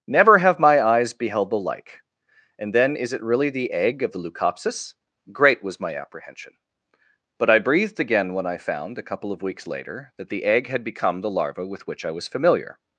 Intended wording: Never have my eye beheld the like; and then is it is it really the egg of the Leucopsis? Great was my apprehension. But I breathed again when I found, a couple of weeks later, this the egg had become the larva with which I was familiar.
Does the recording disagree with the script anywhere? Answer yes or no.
yes